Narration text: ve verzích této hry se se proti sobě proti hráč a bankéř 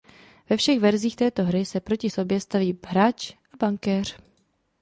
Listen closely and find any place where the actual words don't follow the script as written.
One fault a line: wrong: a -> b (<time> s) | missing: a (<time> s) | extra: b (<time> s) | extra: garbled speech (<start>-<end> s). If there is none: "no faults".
extra: všech (0.6 s)
missing: se (1.8 s)
wrong: proti -> staví (2.4 s)